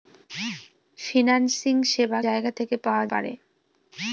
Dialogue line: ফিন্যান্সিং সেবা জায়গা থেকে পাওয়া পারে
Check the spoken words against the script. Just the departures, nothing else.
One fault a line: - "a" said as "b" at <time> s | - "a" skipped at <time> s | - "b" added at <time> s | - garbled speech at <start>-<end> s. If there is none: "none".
none